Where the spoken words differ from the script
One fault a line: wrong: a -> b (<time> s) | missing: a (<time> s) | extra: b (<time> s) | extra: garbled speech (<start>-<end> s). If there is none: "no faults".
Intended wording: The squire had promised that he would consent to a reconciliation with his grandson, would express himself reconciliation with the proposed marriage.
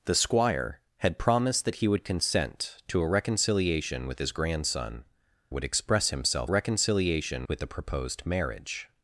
no faults